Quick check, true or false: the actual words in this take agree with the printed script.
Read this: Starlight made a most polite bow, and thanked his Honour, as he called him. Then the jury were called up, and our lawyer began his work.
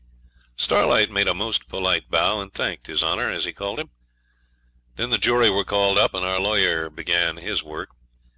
true